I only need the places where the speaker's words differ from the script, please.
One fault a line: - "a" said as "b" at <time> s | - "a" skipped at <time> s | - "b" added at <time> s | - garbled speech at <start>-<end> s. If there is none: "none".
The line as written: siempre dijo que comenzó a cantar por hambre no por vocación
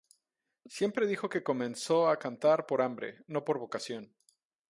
none